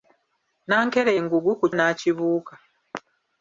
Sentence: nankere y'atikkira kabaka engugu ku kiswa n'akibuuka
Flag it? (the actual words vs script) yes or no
yes